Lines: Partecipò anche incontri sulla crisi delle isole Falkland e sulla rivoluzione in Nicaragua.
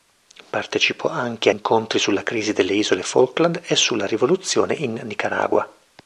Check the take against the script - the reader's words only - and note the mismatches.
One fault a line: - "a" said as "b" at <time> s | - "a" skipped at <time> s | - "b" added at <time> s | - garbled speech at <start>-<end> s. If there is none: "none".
none